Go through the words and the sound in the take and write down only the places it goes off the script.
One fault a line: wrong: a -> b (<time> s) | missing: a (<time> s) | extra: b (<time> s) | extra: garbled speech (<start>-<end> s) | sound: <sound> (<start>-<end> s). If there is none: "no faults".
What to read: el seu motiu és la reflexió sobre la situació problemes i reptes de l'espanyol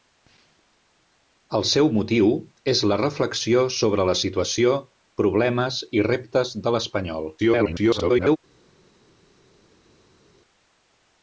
extra: garbled speech (7.4-8.4 s)